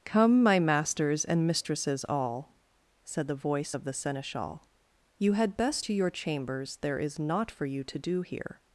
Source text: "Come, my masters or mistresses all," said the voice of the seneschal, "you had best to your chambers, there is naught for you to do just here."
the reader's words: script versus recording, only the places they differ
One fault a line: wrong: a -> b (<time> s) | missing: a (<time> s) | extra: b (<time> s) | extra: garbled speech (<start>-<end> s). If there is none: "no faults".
wrong: or -> and (1.2 s)
missing: just (8.2 s)